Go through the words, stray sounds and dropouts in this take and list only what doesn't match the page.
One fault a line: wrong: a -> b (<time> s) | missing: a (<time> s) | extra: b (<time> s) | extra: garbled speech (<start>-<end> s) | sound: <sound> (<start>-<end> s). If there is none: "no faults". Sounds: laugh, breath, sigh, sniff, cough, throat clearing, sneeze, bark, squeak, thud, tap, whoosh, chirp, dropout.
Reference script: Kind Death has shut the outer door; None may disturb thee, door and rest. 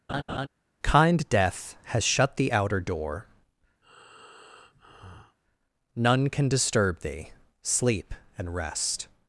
sound: laugh (0.1-0.5 s)
sound: breath (3.8-5.4 s)
wrong: may -> can (6.3 s)
wrong: door -> sleep (7.6 s)